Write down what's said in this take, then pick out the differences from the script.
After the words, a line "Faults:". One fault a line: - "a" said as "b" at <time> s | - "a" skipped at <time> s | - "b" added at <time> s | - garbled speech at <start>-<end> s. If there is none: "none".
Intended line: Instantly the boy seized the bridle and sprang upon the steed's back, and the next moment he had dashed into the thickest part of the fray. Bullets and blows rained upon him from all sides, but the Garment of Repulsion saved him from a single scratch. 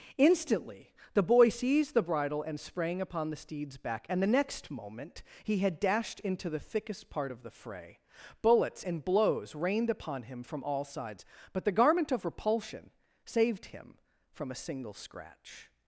Instantly the boy seized the bridle and sprang upon the steed's back, and the next moment he had dashed into the thickest part of the fray. Bullets and blows rained upon him from all sides, but the Garment of Repulsion saved him from a single scratch.
Faults:
none